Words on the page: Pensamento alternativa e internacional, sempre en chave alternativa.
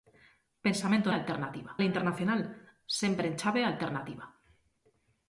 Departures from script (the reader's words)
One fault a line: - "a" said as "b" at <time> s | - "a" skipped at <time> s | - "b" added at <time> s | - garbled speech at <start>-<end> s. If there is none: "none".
none